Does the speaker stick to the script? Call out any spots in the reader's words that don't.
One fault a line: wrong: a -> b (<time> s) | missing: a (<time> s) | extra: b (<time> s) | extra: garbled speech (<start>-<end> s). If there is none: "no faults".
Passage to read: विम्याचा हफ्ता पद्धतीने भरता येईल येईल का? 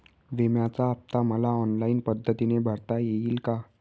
extra: मला ऑनलाईन (1.2 s)
missing: येईल (3.4 s)